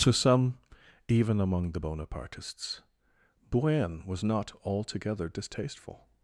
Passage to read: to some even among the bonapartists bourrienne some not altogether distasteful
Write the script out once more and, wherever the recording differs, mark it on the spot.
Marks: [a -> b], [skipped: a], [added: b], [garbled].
to some even among the bonapartists bourrienne [some -> was] not altogether distasteful